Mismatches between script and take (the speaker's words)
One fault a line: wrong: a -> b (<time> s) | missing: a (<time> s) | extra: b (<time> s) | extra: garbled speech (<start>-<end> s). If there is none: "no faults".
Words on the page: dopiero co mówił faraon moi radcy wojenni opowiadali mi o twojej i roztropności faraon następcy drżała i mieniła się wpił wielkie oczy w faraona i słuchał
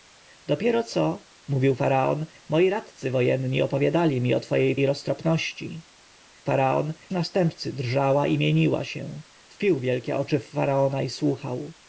no faults